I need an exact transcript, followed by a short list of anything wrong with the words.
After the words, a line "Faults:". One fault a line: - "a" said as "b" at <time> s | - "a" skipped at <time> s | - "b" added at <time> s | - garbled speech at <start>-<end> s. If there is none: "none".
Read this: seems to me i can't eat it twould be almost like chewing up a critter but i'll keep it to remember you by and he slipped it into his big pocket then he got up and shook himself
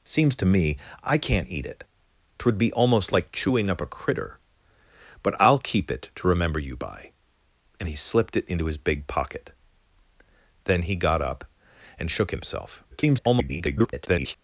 seems to me i can't eat it twould be almost like chewing up a critter but i'll keep it to remember you by and he slipped it into his big pocket then he got up and shook himself [garbled]
Faults:
- garbled speech at 12.9-14.3 s